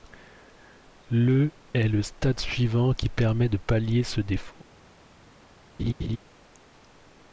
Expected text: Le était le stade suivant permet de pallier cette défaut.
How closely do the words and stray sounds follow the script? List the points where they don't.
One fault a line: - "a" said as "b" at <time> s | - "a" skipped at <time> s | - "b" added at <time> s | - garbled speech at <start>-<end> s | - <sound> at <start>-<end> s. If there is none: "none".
- "était" said as "est" at 1.8 s
- "qui" added at 2.9 s
- "cette" said as "ce" at 4.0 s
- laugh at 5.8-6.2 s